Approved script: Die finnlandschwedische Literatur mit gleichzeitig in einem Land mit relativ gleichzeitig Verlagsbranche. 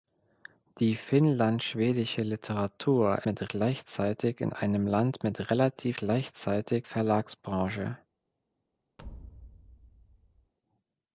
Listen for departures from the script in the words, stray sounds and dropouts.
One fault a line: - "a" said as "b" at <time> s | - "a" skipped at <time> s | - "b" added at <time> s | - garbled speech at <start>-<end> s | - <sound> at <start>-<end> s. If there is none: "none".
- thud at 9.0-10.5 s